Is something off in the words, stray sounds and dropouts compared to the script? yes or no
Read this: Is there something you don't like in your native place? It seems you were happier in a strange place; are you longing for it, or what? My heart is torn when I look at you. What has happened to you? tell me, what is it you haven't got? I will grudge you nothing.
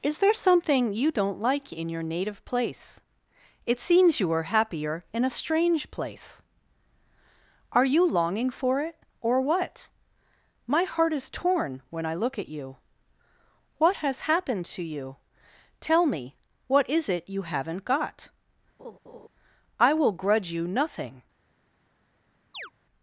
yes